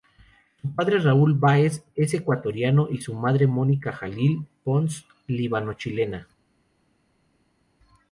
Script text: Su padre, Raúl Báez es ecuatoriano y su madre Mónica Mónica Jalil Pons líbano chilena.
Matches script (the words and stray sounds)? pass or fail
fail